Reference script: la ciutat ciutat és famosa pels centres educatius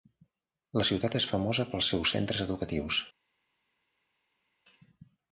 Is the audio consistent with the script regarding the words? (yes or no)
no